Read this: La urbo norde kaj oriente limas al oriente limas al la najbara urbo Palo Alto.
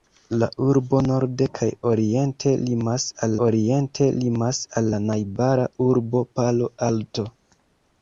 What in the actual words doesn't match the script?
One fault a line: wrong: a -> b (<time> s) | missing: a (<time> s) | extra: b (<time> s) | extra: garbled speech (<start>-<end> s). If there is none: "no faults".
no faults